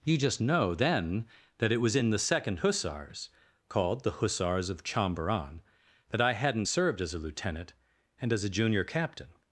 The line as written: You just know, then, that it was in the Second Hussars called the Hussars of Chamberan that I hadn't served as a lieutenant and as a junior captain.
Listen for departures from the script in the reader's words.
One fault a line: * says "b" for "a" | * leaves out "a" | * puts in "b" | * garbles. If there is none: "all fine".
all fine